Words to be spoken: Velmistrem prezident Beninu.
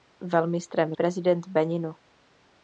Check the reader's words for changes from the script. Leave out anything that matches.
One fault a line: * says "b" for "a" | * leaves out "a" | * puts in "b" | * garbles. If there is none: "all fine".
all fine